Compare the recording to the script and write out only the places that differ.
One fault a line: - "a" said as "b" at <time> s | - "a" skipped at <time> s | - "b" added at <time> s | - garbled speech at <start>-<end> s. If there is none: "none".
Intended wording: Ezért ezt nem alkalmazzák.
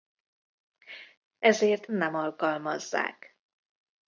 - "ezt" skipped at 1.9 s